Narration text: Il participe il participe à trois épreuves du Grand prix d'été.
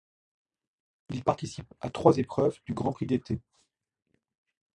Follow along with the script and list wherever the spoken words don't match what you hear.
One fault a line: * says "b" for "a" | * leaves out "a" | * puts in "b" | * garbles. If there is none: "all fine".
* leaves out "il participe"